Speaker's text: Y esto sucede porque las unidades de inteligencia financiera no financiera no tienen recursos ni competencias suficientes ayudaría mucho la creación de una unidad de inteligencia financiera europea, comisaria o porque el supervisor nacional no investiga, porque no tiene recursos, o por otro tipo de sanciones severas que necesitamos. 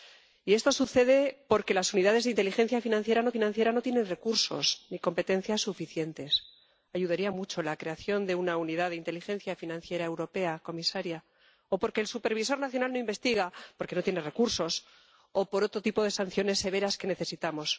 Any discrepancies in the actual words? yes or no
no